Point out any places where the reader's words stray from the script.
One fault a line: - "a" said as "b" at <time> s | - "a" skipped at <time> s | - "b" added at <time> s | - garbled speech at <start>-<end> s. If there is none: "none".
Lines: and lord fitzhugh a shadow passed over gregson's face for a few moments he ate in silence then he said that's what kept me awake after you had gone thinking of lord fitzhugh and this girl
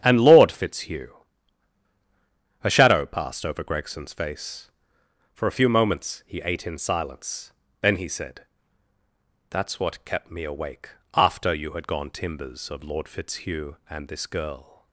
- "thinking" said as "timbers" at 12.1 s